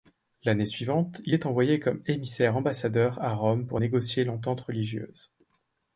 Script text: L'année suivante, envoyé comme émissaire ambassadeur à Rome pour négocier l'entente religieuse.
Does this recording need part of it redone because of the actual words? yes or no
yes